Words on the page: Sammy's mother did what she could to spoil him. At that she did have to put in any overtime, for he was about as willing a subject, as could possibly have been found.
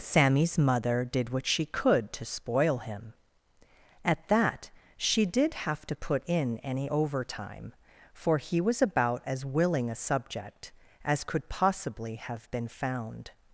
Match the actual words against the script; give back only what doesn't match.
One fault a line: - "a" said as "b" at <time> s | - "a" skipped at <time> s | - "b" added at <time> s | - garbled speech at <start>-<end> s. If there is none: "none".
none